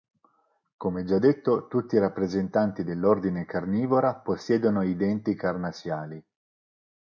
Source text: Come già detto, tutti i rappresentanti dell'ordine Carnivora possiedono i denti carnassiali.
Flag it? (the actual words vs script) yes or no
no